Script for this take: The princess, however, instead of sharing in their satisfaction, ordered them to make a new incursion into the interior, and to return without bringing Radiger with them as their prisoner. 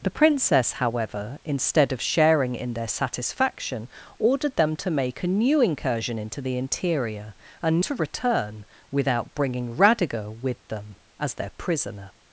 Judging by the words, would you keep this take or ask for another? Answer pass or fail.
pass